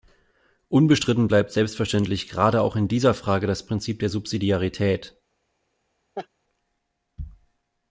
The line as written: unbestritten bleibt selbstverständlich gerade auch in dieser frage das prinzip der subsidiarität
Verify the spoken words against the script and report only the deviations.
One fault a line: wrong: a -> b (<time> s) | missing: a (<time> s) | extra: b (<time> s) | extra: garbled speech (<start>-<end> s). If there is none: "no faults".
no faults